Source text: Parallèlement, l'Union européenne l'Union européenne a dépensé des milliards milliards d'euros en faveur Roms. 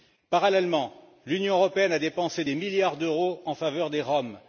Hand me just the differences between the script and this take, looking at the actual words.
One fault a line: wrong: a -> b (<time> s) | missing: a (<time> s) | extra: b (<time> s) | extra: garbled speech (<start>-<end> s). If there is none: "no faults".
missing: l'Union européenne (1.9 s)
missing: milliards (3.0 s)
extra: des (3.9 s)